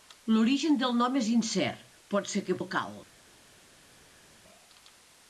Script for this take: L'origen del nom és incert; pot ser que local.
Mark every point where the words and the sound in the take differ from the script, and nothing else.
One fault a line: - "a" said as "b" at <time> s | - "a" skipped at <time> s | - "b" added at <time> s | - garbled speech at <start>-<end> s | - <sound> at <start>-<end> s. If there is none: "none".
none